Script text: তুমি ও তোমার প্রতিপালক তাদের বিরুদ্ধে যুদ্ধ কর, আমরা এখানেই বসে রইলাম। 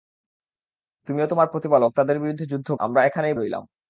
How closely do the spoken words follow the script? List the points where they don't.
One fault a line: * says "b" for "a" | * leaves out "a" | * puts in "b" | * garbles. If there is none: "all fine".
* leaves out "কর"
* leaves out "বসে"